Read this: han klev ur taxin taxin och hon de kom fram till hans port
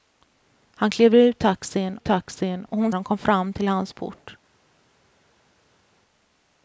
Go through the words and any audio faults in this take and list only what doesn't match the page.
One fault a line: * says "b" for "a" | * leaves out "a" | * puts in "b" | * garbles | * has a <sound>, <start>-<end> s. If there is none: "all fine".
all fine